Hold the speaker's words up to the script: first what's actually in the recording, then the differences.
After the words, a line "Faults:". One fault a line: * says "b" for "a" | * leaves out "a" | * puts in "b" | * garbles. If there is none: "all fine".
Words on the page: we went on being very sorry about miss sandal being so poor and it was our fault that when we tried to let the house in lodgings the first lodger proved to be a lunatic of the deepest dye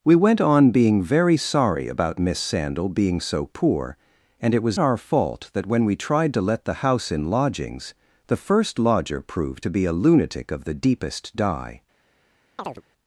we went on being very sorry about miss sandal being so poor and it was our fault that when we tried to let the house in lodgings the first lodger proved to be a lunatic of the deepest dye
Faults:
all fine